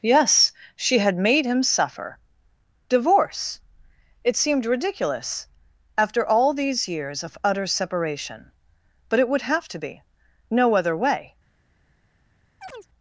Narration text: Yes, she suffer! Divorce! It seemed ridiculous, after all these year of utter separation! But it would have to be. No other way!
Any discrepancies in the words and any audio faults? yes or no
yes